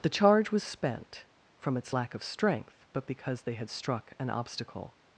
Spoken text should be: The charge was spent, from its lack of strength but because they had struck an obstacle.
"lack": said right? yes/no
yes